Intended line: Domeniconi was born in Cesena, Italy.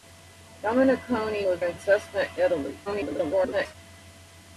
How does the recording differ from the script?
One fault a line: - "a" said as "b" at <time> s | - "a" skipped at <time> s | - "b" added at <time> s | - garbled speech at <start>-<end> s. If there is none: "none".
- "born" skipped at 1.6 s
- garbled speech at 2.9-3.7 s